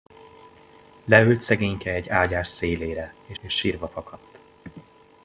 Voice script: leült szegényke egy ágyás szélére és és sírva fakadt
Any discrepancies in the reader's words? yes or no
no